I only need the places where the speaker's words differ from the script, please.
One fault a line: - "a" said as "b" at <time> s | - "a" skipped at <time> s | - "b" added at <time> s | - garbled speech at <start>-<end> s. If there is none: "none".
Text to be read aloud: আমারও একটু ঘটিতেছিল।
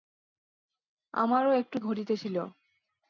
none